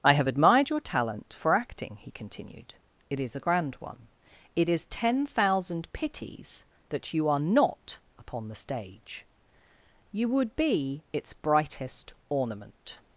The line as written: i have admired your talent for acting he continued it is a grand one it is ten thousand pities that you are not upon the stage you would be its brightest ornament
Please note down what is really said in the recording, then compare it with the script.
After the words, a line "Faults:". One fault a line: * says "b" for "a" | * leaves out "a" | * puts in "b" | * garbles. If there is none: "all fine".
i have admired your talent for acting he continued it is a grand one it is ten thousand pities that you are not upon the stage you would be its brightest ornament
Faults:
all fine